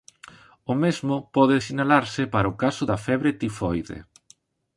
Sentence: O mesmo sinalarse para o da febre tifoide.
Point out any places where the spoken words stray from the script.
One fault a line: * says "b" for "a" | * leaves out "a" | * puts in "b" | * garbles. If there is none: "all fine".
* puts in "pode"
* puts in "caso"